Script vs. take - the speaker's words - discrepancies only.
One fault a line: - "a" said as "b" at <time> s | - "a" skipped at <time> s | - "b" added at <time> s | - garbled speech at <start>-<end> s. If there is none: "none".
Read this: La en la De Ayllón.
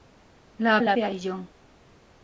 none